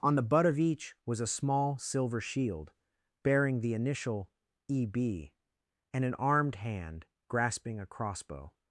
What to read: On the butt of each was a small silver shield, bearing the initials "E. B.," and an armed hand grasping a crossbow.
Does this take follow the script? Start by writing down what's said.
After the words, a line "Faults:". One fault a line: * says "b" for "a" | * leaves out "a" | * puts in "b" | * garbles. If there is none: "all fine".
On the butt of each was a small silver shield, bearing the initial "E. B.," and an armed hand grasping a crossbow.
Faults:
* says "initial" for "initials"